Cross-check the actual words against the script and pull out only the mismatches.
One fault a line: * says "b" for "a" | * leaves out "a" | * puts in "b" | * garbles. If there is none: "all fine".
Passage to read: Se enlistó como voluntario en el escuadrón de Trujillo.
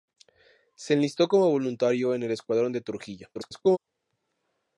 * garbles